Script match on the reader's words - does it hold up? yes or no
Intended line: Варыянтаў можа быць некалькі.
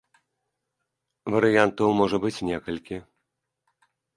yes